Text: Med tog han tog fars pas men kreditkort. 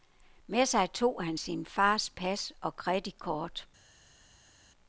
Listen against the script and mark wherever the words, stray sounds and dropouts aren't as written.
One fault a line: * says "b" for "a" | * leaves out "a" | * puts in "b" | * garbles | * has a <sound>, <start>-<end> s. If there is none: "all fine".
* puts in "sig"
* says "sin" for "tog"
* says "og" for "men"